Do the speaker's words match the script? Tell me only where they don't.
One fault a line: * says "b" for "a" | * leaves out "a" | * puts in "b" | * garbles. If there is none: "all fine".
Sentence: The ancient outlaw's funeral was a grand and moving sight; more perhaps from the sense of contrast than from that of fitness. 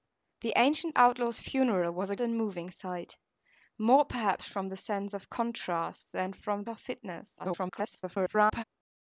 * leaves out "grand"
* leaves out "that"
* garbles